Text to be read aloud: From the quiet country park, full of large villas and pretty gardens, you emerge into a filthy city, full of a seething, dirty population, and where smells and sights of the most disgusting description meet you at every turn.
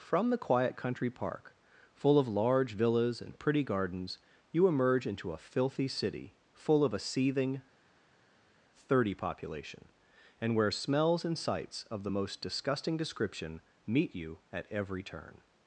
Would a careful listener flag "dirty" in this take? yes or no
yes